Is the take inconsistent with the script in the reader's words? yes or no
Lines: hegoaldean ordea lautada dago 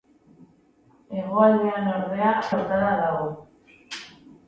no